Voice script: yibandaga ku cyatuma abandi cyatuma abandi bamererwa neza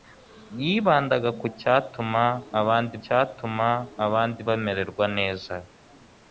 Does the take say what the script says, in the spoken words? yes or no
yes